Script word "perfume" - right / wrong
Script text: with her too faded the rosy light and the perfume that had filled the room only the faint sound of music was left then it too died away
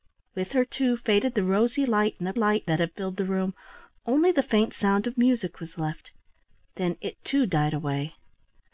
wrong